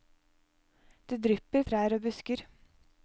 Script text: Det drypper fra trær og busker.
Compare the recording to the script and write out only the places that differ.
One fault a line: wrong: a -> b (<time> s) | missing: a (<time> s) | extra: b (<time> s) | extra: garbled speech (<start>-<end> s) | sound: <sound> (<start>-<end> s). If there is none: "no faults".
missing: fra (1.7 s)